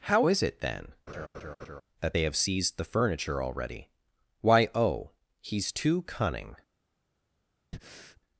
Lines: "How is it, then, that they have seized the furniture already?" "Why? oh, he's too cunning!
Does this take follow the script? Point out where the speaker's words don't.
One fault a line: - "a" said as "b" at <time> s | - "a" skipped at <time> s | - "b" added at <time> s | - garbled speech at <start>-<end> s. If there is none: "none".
none